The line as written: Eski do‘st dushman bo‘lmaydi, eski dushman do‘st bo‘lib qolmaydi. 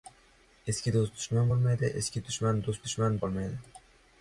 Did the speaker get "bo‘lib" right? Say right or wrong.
wrong